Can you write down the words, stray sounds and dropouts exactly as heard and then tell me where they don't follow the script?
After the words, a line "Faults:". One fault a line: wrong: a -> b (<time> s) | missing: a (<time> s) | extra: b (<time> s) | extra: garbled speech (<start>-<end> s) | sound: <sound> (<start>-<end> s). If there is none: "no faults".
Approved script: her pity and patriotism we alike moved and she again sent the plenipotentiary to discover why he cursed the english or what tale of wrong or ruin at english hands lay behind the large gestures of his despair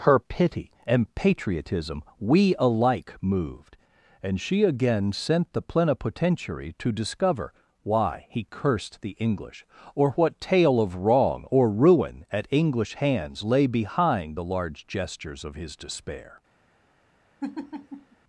her pity and patriotism we alike moved and she again sent the plenipotentiary to discover why he cursed the english or what tale of wrong or ruin at english hands lay behind the large gestures of his despair
Faults:
sound: laugh (17.4-18.2 s)